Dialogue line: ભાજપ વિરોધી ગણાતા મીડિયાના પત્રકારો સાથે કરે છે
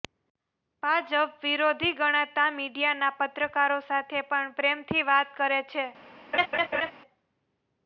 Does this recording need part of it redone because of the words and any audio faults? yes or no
yes